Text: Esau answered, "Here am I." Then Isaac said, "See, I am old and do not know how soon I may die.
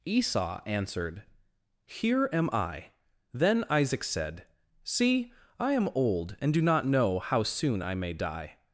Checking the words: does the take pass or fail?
pass